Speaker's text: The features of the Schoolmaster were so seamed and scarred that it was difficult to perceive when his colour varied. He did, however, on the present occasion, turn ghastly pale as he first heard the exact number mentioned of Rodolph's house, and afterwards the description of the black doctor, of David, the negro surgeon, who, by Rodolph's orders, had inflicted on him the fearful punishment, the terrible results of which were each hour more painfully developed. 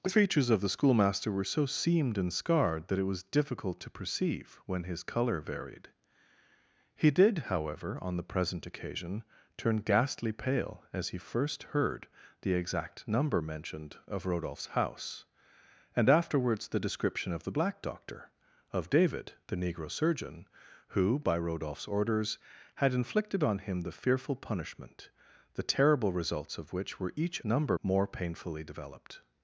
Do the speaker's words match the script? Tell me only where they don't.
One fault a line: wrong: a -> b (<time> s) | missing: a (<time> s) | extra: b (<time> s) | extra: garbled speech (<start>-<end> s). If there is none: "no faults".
wrong: hour -> number (27.4 s)